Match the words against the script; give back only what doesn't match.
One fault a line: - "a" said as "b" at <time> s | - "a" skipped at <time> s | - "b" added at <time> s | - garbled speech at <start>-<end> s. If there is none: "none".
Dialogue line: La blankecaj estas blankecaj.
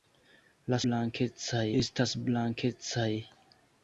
none